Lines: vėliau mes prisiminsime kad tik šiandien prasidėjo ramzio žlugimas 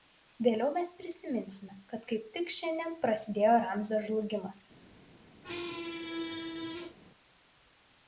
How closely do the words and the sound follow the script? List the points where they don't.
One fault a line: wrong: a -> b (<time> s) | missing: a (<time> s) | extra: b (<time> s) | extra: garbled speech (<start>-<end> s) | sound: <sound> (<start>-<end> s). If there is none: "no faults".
extra: kaip (2.1 s)
sound: squeak (5.4-7.0 s)